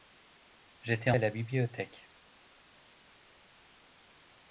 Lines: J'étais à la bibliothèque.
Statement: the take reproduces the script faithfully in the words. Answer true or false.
true